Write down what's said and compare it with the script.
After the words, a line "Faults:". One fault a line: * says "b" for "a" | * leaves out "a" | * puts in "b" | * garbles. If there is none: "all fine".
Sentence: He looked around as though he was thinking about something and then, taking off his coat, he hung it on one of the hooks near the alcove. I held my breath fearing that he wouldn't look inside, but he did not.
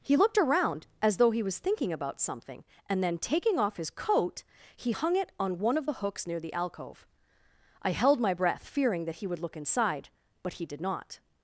He looked around as though he was thinking about something and then, taking off his coat, he hung it on one of the hooks near the alcove. I held my breath fearing that he would look inside, but he did not.
Faults:
* says "would" for "wouldn't"